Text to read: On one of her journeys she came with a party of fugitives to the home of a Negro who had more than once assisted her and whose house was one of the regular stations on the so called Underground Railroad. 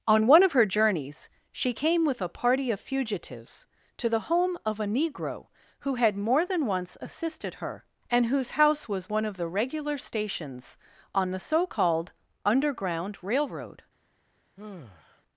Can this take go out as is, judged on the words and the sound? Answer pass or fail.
fail